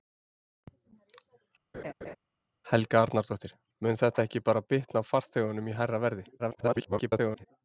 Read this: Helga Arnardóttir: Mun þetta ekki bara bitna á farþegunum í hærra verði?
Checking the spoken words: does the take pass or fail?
fail